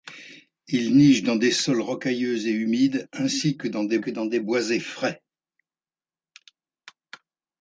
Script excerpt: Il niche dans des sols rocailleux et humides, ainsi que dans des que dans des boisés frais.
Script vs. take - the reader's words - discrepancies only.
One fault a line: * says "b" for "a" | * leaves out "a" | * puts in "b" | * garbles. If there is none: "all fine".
all fine